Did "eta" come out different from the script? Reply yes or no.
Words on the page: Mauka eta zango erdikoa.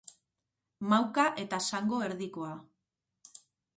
no